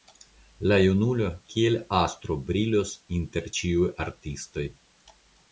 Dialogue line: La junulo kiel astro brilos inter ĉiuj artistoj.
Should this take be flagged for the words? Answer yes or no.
no